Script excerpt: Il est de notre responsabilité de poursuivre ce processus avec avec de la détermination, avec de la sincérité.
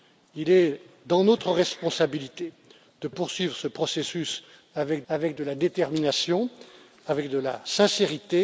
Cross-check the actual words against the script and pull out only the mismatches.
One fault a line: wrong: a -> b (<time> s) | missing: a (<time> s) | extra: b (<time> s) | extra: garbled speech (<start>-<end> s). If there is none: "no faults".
no faults